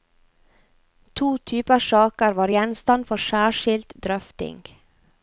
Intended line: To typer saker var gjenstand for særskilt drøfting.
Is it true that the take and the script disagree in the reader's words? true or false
false